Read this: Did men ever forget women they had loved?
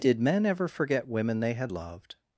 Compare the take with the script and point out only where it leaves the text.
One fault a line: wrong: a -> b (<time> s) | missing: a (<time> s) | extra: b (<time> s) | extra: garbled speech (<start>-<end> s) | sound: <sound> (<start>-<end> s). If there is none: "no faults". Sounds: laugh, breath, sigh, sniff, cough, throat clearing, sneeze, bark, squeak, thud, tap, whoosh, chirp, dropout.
no faults